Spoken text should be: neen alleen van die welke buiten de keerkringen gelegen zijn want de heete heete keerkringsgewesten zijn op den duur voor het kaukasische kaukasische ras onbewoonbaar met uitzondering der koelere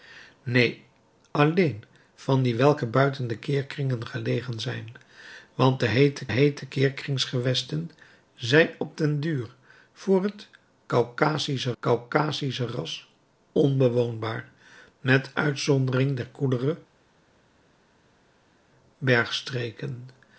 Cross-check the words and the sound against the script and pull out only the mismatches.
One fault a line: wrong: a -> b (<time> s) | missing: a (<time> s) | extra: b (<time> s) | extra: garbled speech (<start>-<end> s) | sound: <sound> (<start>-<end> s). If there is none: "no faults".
no faults